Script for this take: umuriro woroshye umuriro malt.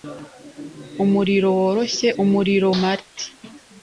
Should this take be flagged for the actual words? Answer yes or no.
no